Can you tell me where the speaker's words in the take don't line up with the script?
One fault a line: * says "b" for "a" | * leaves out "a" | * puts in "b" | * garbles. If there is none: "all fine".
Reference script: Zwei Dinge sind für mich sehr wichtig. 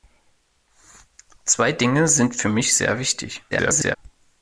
* garbles